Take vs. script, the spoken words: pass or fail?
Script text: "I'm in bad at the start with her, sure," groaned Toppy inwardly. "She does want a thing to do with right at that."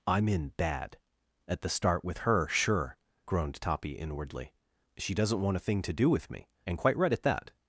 fail